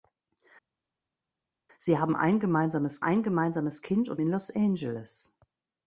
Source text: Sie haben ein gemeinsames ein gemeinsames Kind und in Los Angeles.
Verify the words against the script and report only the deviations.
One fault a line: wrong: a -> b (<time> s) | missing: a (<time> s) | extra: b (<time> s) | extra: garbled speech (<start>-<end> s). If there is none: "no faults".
no faults